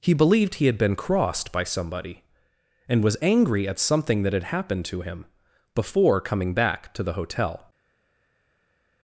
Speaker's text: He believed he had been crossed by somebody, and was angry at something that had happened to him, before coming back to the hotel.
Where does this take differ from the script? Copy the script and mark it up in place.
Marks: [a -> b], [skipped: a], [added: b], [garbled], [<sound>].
He believed he had been crossed by somebody, and was angry at something that had happened to him, before coming back to the hotel.